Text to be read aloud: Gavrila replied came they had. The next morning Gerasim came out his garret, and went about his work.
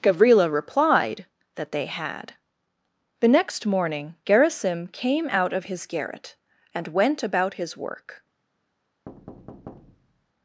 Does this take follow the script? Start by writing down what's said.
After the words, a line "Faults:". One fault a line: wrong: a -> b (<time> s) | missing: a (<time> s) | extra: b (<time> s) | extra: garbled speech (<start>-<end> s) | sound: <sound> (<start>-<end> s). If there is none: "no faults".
Gavrila replied that they had. The next morning Gerasim came out of his garret, and went about his work.
Faults:
wrong: came -> that (1.6 s)
extra: of (5.5 s)
sound: thud (9.1-10.3 s)